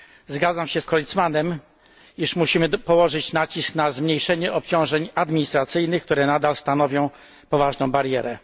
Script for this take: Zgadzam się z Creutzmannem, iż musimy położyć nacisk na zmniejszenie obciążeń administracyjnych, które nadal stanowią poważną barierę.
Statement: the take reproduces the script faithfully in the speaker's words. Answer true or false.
true